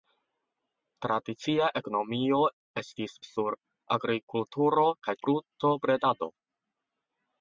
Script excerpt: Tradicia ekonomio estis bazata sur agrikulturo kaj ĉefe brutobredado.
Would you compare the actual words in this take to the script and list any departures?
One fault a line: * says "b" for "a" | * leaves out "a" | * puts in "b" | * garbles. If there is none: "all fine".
* leaves out "bazata"
* leaves out "ĉefe"